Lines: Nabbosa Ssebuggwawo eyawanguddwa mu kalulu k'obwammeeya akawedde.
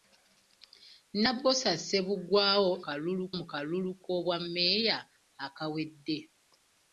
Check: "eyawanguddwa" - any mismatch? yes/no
yes